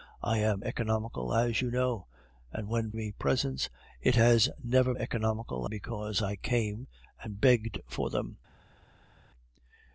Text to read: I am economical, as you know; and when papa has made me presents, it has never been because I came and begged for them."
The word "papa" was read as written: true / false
false